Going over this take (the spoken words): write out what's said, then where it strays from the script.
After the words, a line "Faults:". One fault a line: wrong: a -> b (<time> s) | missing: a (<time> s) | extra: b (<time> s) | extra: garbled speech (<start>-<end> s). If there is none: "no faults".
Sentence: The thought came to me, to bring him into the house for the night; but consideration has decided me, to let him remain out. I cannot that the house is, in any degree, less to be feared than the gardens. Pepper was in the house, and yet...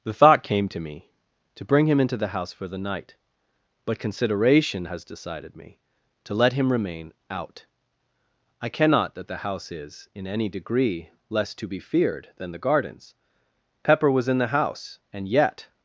The thought came to me, to bring him into the house for the night; but consideration has decided me, to let him remain out. I cannot that the house is, in any degree, less to be feared than the gardens. Pepper was in the house, and yet...
Faults:
no faults